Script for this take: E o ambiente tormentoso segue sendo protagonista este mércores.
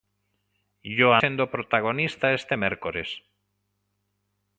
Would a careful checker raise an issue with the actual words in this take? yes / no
yes